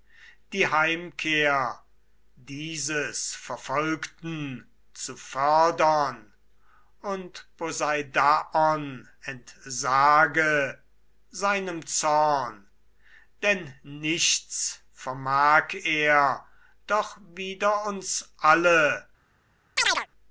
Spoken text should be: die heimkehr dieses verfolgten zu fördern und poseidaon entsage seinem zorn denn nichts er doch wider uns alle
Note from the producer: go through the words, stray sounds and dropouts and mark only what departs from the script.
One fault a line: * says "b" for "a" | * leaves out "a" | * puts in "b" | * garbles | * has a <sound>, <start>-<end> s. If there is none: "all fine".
* puts in "vermag"
* has a chirp, 19.8-20.1 s